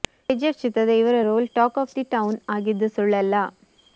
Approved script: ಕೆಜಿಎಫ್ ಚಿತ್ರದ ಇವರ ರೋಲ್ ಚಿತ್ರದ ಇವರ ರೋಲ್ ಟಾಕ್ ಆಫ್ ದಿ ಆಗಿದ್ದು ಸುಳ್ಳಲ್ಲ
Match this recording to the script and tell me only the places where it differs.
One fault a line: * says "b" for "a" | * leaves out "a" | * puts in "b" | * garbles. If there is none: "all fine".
* leaves out "ಚಿತ್ರದ ಇವರ ರೋಲ್"
* puts in "ಟೌನ್"